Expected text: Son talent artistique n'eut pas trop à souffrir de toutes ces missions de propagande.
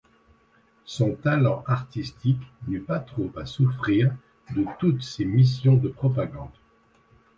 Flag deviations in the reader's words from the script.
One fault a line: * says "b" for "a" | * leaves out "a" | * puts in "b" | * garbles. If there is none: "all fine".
all fine